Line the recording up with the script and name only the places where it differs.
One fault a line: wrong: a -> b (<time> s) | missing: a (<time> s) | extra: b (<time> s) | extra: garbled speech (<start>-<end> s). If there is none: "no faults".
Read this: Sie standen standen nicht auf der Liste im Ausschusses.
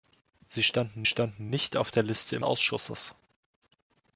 no faults